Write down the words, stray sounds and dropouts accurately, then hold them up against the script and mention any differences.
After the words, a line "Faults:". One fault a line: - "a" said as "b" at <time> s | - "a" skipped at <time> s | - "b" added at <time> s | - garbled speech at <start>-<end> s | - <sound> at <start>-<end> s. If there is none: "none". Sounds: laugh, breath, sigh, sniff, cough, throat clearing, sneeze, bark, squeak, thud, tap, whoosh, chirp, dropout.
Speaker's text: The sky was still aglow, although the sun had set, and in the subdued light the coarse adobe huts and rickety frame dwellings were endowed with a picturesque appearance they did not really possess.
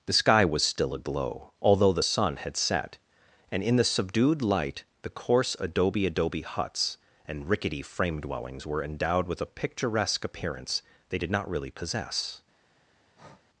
The sky was still aglow, although the sun had set, and in the subdued light the coarse adobe adobe huts and rickety frame dwellings were endowed with a picturesque appearance they did not really possess.
Faults:
- "adobe" added at 6.1 s
- breath at 13.1-13.5 s